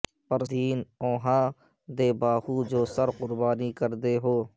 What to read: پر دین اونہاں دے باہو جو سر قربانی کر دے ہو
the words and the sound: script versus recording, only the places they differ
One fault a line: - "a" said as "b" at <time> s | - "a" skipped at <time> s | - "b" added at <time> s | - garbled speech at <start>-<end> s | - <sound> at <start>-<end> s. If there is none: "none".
none